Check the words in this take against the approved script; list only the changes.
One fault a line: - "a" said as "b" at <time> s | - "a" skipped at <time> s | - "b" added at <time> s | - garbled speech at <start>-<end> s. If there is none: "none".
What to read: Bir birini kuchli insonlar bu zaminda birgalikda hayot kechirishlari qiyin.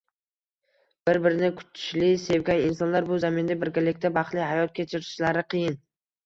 - "sevgan" added at 2.3 s
- "baxtli" added at 4.2 s